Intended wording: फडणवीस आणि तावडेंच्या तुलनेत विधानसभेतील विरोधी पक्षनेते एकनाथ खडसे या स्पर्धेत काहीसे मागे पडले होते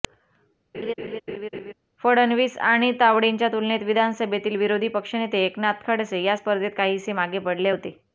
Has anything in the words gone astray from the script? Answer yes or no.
no